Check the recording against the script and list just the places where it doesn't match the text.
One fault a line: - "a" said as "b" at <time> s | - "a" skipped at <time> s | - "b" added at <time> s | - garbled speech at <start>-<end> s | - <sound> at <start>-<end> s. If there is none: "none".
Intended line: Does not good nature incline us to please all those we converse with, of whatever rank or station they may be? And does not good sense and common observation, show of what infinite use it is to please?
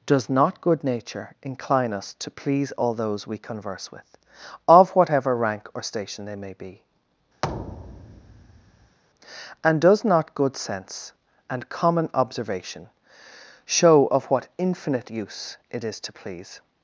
- thud at 7.4-9.0 s